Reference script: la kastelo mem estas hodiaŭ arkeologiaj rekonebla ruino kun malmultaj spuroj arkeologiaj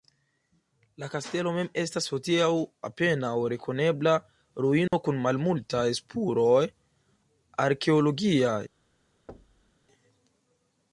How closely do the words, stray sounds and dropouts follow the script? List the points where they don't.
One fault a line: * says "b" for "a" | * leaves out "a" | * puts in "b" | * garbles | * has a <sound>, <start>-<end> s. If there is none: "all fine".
* says "apenaŭ" for "arkeologiaj"
* has a dropout, 4.9-4.9 s
* has a thud, 9.3-9.7 s